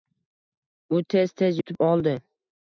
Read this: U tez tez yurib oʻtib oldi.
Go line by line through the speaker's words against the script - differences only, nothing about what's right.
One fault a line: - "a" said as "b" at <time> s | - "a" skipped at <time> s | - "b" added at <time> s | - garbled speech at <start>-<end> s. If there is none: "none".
- "yurib" skipped at 1.6 s